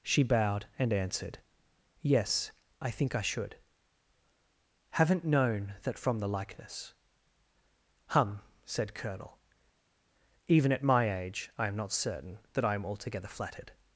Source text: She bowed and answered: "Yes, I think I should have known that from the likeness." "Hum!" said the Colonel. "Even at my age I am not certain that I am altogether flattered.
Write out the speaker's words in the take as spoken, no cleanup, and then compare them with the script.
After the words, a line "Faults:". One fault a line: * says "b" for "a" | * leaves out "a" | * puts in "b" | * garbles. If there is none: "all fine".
She bowed and answered: "Yes, I think I should haven't known that from the likeness." "Hum!" said Colonel. "Even at my age I am not certain that I am altogether flattered.
Faults:
* says "haven't" for "have"
* leaves out "the"